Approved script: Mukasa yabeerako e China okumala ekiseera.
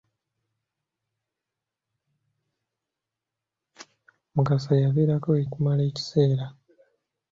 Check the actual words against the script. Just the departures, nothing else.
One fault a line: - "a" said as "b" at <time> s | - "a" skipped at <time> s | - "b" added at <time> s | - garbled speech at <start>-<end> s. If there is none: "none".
- "China" skipped at 5.4 s